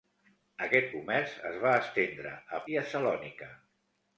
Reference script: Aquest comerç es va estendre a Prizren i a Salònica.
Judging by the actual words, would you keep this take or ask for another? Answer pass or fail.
fail